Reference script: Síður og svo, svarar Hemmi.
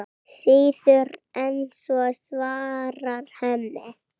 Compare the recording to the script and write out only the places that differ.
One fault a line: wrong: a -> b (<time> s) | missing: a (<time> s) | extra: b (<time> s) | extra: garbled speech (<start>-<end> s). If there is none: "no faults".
wrong: og -> en (1.4 s)